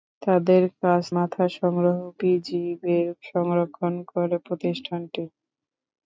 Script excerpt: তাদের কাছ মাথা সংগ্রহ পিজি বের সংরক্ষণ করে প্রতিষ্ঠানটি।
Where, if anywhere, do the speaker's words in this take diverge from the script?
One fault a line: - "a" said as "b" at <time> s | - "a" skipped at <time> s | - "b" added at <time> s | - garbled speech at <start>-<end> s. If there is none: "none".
none